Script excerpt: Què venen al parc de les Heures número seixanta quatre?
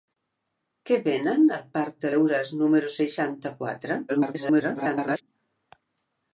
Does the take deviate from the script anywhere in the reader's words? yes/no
yes